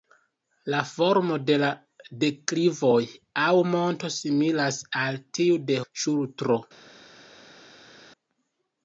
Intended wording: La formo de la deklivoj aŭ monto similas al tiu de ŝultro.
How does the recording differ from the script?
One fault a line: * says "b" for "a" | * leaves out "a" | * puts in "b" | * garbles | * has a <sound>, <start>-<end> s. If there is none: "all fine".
all fine